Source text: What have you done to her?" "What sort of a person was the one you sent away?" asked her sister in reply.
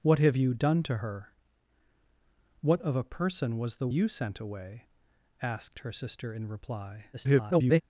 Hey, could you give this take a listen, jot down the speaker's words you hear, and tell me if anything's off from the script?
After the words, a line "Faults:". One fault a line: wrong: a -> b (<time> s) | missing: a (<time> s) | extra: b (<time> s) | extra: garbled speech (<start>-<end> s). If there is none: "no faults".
What have you done to her?" "What of a person was the you sent away?" asked her sister in reply. [garbled]
Faults:
missing: sort (2.8 s)
missing: one (3.9 s)
extra: garbled speech (7.1-7.8 s)